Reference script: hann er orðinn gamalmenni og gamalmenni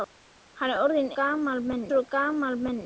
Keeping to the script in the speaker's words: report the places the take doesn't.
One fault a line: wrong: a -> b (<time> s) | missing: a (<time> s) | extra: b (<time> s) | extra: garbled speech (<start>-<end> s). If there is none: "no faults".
no faults